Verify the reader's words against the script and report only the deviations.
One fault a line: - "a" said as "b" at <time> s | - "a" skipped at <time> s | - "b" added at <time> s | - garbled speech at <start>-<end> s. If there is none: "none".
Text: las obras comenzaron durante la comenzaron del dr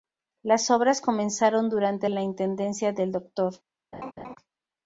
- "comenzaron" said as "intendencia" at 2.2 s